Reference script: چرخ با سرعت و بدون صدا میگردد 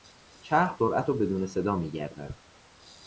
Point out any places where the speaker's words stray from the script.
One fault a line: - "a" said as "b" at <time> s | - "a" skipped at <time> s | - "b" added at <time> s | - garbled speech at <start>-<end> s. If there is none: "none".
- "با" skipped at 0.8 s